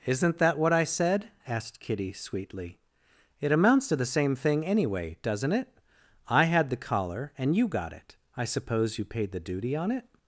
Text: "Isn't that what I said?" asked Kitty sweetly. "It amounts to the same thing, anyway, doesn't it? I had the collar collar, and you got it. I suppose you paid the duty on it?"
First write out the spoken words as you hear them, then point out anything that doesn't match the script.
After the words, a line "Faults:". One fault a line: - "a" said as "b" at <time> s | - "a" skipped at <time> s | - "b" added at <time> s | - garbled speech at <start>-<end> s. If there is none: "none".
"Isn't that what I said?" asked Kitty sweetly. "It amounts to the same thing, anyway, doesn't it? I had the collar, and you got it. I suppose you paid the duty on it?"
Faults:
- "collar" skipped at 7.3 s